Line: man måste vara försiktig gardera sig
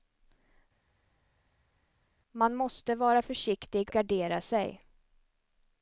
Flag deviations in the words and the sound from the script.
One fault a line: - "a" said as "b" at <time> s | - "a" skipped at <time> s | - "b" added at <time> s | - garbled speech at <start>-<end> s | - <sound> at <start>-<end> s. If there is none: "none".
none